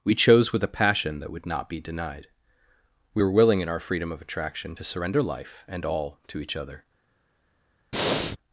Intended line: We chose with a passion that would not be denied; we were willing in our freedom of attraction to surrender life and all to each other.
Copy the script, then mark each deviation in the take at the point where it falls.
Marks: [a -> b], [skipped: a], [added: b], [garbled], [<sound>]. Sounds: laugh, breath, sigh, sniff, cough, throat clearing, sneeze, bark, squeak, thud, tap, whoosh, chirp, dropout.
We chose with a passion that would not be denied; we were willing in our freedom of attraction to surrender life and all to each other. [breath]